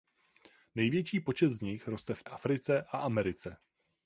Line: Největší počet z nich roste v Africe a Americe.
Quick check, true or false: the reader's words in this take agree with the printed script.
true